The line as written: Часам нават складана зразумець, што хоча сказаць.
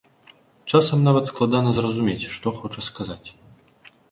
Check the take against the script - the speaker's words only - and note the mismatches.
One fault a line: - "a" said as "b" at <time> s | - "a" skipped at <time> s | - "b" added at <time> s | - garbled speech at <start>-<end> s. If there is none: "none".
none